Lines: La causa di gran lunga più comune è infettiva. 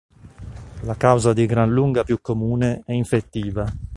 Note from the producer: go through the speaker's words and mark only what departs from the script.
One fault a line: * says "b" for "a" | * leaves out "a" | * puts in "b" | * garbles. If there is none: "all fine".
all fine